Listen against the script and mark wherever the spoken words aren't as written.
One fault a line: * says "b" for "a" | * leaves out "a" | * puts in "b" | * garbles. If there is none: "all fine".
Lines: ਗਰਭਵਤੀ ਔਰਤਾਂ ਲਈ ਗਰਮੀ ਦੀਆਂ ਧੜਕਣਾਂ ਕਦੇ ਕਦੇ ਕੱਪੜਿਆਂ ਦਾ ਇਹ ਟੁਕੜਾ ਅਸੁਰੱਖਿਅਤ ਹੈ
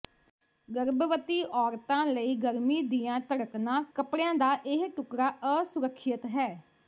* leaves out "ਕਦੇ ਕਦੇ"